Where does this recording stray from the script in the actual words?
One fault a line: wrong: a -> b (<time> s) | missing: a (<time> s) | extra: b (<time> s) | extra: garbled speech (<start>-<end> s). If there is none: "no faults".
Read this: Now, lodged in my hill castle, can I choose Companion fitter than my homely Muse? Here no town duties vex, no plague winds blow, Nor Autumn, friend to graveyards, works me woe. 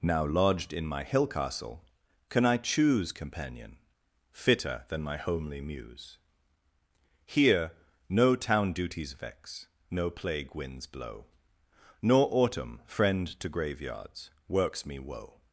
no faults